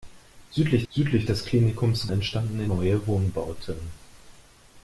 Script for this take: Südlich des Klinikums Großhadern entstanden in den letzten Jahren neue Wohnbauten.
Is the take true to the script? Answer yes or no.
no